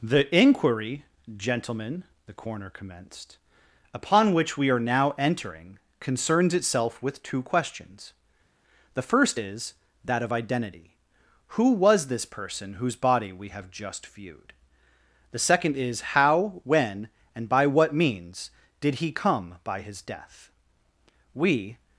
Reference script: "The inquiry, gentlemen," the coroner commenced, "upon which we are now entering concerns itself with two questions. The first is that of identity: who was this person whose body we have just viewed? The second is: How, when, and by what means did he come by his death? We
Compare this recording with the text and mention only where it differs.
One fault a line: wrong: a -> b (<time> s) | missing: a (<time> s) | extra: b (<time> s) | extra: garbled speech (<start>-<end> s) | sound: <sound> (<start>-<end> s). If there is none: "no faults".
no faults